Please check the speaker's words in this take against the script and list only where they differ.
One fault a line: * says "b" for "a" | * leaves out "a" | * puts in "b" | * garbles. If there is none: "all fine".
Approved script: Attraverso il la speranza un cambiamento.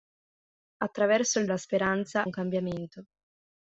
all fine